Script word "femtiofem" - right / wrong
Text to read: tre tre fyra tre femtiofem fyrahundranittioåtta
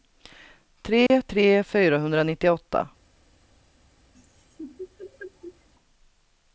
wrong